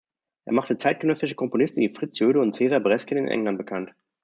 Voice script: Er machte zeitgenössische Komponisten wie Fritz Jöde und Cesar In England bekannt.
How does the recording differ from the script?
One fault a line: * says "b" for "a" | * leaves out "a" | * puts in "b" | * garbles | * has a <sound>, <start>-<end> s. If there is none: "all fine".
* puts in "Bresgen"